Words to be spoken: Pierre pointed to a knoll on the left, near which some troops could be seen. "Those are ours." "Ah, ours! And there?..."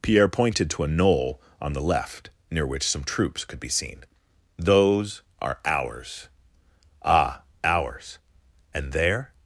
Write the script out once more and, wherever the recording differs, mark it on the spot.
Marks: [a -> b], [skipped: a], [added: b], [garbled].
Pierre pointed to a knoll on the left, near which some troops could be seen. "Those are ours." "Ah, ours! And there?..."